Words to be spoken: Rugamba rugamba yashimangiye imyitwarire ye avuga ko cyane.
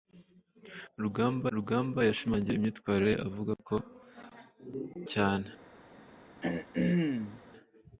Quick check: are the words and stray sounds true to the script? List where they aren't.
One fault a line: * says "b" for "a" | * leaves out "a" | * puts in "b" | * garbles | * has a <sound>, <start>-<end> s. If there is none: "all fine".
* has a throat clearing, 6.4-7.4 s